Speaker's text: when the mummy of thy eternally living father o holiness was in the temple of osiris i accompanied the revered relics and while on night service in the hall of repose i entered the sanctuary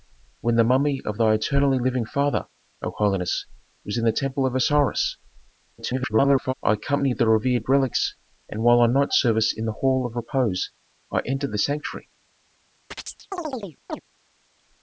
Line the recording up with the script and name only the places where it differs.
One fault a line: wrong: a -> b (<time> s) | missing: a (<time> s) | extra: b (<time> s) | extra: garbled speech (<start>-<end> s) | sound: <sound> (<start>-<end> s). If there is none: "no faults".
extra: garbled speech (5.8-6.5 s)
sound: chirp (12.9-14.0 s)